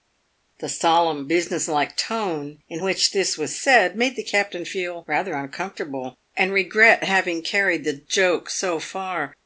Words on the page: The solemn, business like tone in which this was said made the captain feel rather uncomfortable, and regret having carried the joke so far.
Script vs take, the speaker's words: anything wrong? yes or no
no